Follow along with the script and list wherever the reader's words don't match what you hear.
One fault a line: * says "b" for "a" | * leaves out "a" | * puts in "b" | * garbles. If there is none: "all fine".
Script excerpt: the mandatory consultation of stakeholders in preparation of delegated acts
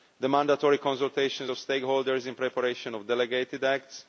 all fine